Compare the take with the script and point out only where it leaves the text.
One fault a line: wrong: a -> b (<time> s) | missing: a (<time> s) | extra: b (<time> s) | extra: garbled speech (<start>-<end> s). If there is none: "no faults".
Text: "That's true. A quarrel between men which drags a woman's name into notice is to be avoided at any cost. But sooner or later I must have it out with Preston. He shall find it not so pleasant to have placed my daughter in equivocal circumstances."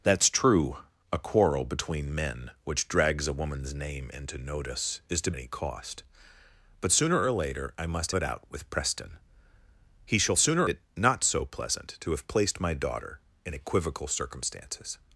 missing: be avoided at (5.3 s)
missing: have (8.1 s)
wrong: find -> sooner (10.4 s)